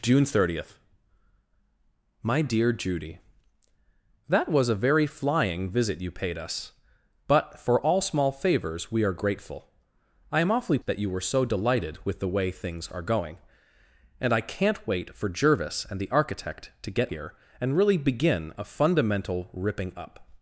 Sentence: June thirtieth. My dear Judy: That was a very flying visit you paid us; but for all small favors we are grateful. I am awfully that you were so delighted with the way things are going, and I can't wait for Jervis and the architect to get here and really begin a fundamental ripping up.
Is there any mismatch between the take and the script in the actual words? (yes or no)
no